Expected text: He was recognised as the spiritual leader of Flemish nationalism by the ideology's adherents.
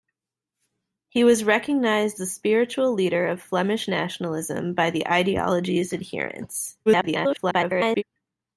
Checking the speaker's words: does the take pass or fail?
fail